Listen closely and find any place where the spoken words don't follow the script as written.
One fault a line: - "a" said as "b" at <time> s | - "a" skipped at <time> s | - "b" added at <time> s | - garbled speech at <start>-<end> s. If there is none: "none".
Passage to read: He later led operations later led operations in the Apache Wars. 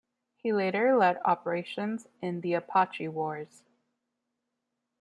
- "later led operations" skipped at 2.1 s